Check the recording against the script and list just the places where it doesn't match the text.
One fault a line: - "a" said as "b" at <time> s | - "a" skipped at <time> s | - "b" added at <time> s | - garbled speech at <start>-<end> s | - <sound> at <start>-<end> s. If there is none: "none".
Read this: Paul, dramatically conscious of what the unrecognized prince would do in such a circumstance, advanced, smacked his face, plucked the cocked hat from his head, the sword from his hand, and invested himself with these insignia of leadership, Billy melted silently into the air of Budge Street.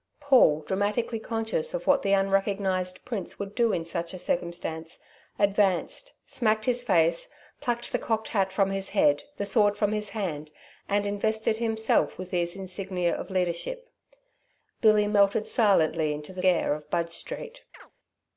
- chirp at 17.7-17.9 s